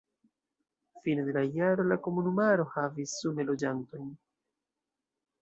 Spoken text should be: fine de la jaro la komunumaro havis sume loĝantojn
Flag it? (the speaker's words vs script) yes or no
no